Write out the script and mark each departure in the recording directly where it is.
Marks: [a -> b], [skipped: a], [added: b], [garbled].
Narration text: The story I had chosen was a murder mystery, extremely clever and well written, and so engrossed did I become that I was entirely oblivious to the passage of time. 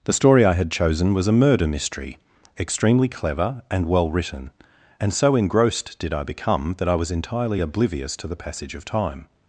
The story I had chosen was a murder mystery, extremely clever and well written, and so engrossed did I become that I was entirely oblivious to the passage of time.